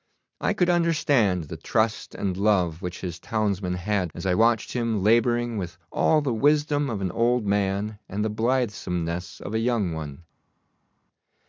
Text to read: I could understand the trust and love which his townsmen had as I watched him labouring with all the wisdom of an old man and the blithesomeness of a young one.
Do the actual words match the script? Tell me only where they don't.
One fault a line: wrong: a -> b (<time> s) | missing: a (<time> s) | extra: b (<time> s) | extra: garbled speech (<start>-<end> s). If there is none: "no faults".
no faults